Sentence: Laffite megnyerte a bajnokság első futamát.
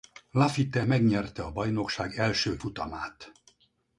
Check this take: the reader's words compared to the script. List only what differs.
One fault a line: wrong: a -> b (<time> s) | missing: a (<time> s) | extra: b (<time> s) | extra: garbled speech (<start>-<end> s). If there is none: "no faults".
no faults